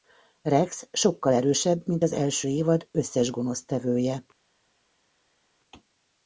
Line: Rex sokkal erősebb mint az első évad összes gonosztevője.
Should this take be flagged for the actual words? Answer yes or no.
no